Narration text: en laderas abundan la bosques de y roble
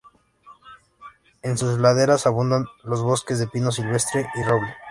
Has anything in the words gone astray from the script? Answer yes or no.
yes